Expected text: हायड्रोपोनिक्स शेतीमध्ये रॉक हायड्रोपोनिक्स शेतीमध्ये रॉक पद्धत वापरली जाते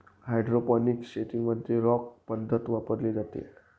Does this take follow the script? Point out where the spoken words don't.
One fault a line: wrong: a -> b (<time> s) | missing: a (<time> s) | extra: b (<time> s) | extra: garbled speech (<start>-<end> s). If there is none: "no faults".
missing: हायड्रोपोनिक्स शेतीमध्ये रॉक (2.1 s)